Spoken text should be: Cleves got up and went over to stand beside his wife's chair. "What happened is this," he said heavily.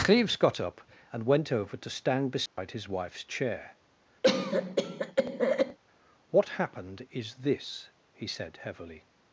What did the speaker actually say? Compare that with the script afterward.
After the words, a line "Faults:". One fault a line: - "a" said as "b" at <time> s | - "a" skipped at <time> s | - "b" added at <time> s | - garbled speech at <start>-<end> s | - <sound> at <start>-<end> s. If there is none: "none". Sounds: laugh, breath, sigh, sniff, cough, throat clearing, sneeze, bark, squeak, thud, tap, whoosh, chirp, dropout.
Cleves got up and went over to stand beside his wife's chair. "What happened is this," he said heavily.
Faults:
- dropout at 2.5-2.6 s
- cough at 4.2-5.8 s